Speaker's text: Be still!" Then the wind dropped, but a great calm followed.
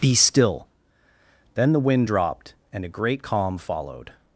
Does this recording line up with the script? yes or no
no